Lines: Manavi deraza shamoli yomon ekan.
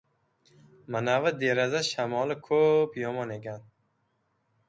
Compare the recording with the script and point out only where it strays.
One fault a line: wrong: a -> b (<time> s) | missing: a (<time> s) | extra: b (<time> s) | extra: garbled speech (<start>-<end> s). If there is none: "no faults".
extra: ko‘p (2.5 s)